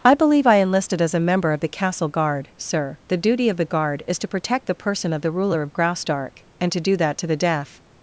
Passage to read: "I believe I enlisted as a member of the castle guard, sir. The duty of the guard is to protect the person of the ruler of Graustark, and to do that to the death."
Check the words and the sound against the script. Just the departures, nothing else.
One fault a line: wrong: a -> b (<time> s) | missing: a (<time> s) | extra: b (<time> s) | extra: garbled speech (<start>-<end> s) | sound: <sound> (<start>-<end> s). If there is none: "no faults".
no faults